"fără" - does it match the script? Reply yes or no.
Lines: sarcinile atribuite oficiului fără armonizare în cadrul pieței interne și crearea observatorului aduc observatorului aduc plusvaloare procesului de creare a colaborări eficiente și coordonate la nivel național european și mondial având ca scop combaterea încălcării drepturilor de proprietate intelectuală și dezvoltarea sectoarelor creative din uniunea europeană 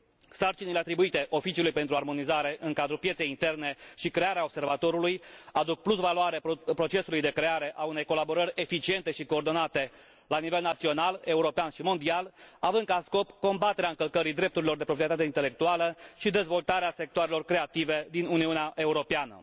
no